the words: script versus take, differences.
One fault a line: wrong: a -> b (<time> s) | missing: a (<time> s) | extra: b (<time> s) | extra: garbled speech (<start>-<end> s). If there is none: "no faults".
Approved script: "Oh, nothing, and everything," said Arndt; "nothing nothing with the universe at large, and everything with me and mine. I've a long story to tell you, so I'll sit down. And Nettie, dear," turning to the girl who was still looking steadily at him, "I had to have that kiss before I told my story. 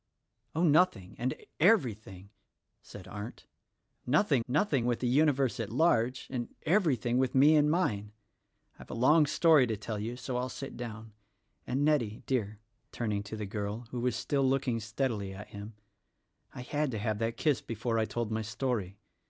no faults